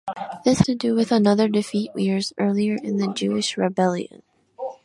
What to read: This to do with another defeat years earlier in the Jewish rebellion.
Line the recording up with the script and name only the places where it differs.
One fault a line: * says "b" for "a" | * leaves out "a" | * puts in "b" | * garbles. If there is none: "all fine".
all fine